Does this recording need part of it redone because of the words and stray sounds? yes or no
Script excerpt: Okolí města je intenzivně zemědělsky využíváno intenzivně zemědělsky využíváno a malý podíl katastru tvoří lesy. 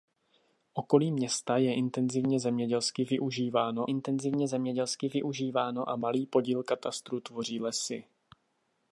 no